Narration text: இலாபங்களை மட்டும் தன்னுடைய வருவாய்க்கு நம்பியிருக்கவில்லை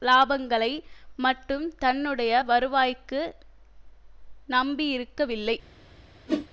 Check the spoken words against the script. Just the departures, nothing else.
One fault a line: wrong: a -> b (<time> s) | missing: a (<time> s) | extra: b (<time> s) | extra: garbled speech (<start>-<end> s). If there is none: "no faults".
no faults